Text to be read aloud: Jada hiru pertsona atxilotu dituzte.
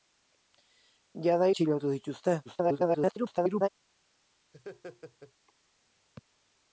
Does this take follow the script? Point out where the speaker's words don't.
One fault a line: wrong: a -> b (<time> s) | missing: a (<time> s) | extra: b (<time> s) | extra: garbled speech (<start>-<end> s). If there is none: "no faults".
missing: hiru pertsona (1.5 s)
extra: garbled speech (2.4-3.7 s)